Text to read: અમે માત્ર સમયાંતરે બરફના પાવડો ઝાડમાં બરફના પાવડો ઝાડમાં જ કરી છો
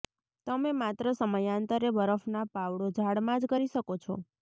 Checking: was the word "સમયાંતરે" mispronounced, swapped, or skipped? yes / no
no